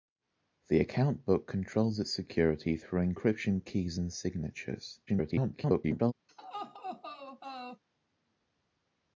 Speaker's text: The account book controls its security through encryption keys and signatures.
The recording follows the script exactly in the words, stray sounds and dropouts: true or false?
false